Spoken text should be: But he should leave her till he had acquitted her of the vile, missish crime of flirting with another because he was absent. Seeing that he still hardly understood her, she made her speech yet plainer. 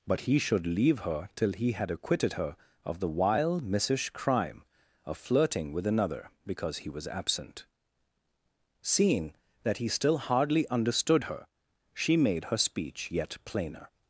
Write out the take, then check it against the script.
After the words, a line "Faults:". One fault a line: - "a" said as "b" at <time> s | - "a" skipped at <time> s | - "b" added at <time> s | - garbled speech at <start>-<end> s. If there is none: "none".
But he should leave her till he had acquitted her of the vile, missish crime of flirting with another because he was absent. Seeing that he still hardly understood her, she made her speech yet plainer.
Faults:
none